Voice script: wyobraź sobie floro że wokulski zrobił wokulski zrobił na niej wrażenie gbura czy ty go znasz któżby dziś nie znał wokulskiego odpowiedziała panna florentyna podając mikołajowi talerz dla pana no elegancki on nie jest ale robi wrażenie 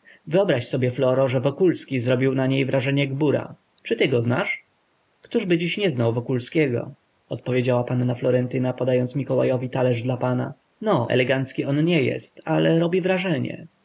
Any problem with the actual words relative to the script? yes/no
yes